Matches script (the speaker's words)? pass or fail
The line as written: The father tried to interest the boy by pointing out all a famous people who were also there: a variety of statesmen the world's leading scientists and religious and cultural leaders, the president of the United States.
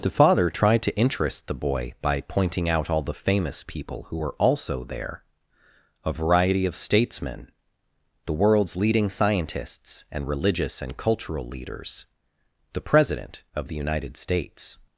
fail